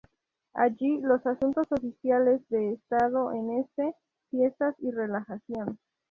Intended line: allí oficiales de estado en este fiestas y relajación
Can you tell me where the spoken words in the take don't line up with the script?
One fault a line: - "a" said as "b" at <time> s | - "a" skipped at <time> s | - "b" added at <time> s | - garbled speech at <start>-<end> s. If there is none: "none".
- "los asuntos" added at 1.0 s